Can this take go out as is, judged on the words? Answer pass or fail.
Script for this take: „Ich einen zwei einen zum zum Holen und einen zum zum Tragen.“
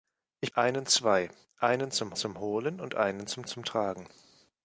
pass